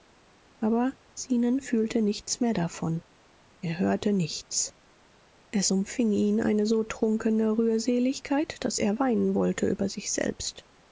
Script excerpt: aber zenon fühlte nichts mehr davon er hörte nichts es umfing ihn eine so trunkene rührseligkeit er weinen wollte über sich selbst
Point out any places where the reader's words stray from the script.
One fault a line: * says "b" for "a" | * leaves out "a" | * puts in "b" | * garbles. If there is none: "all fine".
* puts in "daß"